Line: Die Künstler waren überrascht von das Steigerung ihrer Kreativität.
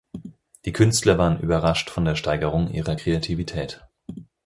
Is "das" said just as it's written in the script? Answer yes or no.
no